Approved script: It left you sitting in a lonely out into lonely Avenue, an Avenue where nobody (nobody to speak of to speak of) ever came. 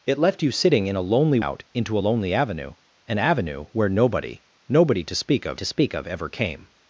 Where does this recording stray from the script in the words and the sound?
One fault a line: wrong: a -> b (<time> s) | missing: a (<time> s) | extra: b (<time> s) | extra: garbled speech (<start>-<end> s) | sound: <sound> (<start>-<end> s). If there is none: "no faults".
no faults